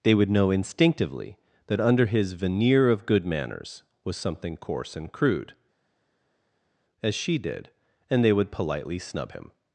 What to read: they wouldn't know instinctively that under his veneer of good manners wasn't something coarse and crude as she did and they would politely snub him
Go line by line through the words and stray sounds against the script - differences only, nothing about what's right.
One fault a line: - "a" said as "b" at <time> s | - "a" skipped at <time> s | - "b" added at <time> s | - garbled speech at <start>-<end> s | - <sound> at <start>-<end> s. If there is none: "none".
- "wouldn't" said as "would" at 0.1 s
- "wasn't" said as "was" at 4.0 s